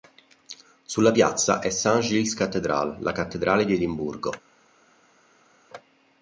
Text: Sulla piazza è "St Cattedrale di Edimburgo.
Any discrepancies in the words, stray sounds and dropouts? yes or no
yes